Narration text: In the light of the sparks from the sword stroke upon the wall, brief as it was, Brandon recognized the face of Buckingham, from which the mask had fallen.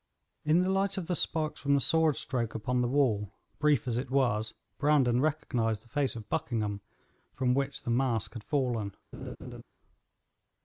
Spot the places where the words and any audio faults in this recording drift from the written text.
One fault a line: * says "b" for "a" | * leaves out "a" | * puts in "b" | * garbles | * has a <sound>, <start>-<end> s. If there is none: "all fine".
* has a laugh, 9.1-9.6 s